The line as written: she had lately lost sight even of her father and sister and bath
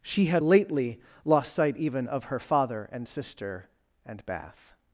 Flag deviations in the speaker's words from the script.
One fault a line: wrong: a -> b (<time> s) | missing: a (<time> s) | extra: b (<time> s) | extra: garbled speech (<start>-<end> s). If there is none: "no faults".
no faults